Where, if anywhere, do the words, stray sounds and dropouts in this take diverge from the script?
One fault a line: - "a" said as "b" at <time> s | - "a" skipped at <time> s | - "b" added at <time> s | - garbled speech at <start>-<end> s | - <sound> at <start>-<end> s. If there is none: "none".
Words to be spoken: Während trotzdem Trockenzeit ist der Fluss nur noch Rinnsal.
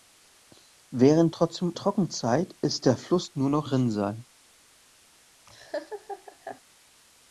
- laugh at 5.5-6.6 s